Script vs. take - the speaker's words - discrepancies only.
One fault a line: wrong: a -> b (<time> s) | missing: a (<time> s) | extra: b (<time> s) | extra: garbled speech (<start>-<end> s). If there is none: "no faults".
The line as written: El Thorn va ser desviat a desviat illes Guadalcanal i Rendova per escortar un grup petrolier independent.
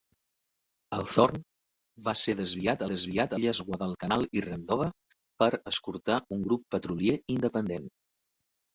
no faults